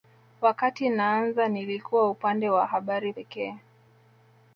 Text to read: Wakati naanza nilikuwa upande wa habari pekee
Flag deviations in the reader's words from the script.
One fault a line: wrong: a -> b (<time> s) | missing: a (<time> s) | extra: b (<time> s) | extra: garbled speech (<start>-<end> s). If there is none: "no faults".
no faults